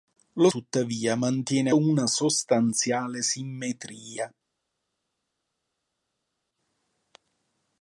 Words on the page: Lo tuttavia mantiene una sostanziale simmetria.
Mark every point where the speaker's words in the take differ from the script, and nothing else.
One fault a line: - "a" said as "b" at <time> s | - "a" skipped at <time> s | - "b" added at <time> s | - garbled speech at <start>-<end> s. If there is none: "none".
none